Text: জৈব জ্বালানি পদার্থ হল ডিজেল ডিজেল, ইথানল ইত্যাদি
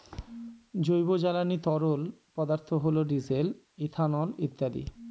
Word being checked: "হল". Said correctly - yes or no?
yes